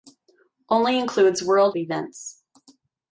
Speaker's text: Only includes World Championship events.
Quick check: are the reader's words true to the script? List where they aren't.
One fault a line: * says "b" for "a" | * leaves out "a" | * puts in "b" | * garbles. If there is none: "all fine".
* leaves out "Championship"